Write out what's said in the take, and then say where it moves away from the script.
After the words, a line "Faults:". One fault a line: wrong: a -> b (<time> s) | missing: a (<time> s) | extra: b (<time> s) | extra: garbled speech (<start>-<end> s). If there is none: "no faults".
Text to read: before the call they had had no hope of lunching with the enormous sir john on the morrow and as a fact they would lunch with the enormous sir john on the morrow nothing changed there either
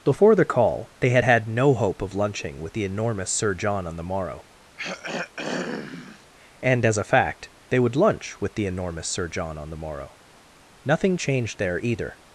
before the call they had had no hope of lunching with the enormous sir john on the morrow and as a fact they would lunch with the enormous sir john on the morrow nothing changed there either
Faults:
no faults